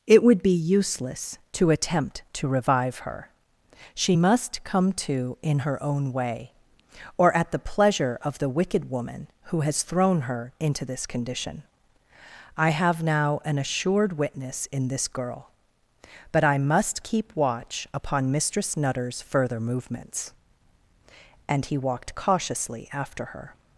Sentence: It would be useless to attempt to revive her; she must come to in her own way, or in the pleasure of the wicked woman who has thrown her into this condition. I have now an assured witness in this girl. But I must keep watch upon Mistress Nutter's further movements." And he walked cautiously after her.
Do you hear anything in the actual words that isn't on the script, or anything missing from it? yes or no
yes